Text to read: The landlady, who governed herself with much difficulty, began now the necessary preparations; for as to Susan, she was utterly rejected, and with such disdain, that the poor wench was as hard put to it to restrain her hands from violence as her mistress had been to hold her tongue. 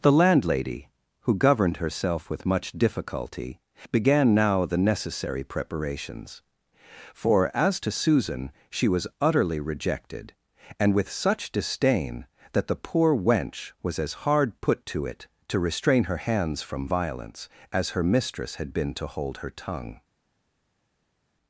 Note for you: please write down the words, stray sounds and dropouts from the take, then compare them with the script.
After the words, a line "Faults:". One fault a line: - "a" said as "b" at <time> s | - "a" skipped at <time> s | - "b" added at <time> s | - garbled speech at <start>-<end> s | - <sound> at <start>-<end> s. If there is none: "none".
The landlady, who governed herself with much difficulty, began now the necessary preparations; for as to Susan, she was utterly rejected, and with such disdain, that the poor wench was as hard put to it to restrain her hands from violence as her mistress had been to hold her tongue.
Faults:
none